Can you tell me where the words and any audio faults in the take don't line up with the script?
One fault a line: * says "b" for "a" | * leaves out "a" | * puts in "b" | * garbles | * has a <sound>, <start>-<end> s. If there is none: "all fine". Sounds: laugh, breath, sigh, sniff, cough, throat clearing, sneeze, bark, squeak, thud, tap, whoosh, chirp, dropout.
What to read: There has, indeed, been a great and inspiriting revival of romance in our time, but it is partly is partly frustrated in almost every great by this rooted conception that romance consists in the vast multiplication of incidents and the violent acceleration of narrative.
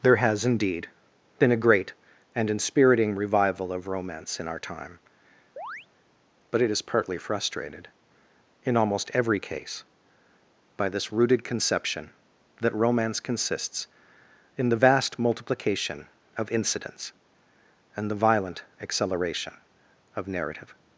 * has a chirp, 5.6-5.9 s
* leaves out "is partly"
* says "case" for "great"